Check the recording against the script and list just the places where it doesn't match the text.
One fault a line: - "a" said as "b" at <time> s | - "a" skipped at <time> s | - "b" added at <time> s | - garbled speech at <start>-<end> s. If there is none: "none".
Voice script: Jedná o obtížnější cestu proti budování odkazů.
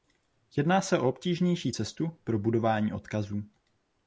- "se" added at 0.8 s
- "proti" said as "pro" at 2.2 s